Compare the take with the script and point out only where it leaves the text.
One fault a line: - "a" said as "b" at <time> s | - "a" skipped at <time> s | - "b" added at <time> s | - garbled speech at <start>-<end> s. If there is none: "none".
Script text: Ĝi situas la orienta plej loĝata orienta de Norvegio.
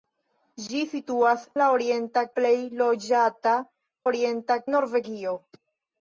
none